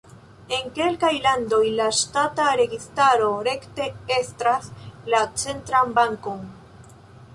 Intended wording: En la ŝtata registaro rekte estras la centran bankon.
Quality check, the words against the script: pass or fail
fail